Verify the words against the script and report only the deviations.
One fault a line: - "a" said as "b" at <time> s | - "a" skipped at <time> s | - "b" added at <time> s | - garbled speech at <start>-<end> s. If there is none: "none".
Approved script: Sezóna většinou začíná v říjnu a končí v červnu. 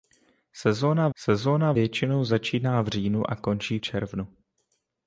- "sezóna" added at 1.2 s
- "v" skipped at 3.8 s